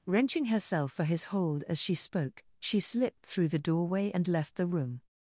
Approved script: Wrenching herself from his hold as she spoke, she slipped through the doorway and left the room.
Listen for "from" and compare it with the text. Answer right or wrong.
wrong